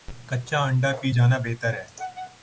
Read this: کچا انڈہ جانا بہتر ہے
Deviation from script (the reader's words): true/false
true